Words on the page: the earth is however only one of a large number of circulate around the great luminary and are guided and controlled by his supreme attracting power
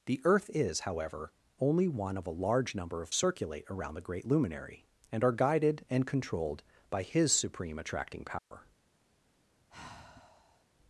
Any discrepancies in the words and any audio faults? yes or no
yes